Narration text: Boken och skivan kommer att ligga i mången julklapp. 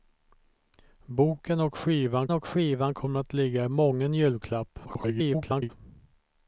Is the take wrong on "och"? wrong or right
right